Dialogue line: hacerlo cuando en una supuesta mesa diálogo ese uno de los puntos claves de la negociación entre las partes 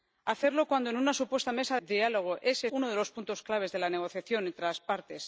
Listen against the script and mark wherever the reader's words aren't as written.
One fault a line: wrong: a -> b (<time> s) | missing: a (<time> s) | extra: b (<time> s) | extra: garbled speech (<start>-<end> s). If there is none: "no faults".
no faults